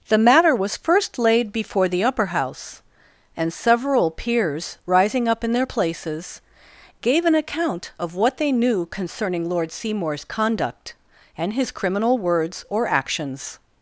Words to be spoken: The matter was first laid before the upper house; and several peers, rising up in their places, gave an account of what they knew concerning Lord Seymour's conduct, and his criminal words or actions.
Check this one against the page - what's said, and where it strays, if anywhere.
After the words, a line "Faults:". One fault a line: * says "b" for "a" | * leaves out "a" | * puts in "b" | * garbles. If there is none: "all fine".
The matter was first laid before the upper house; and several peers, rising up in their places, gave an account of what they knew concerning Lord Seymour's conduct, and his criminal words or actions.
Faults:
all fine